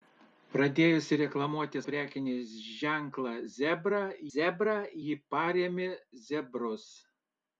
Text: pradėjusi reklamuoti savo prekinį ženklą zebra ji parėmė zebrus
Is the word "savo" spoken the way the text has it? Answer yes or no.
no